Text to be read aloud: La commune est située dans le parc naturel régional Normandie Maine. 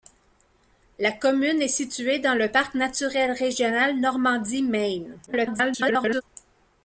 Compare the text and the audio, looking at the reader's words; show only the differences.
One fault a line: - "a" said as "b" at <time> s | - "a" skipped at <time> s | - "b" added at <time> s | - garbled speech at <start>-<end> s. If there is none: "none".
- garbled speech at 5.3-6.2 s